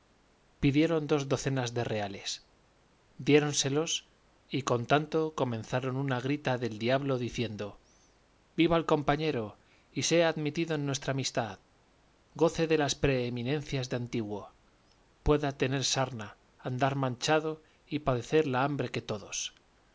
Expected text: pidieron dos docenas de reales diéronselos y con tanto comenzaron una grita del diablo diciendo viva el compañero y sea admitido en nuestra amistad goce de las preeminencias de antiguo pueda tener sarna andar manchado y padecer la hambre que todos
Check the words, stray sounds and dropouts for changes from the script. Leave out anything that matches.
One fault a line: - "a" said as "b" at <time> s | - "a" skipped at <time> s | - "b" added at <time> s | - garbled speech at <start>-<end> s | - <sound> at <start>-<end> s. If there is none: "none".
none